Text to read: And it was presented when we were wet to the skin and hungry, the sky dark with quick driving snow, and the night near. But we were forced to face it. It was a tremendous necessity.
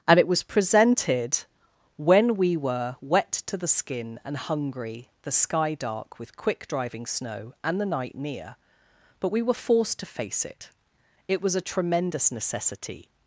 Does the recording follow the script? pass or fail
pass